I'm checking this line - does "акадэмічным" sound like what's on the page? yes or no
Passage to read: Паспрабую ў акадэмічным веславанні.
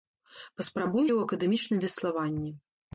yes